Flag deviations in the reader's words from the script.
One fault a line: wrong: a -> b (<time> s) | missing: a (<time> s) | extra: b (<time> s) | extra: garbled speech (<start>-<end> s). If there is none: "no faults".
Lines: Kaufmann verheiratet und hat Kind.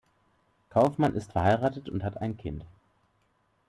extra: ist (1.1 s)
extra: ein (2.2 s)